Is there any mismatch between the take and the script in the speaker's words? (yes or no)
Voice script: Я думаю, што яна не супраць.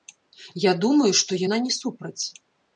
no